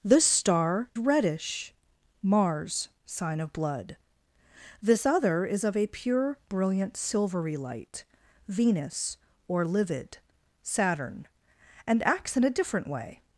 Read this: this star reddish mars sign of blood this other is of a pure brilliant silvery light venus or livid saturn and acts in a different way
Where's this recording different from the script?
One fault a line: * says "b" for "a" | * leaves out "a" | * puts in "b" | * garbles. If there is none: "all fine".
all fine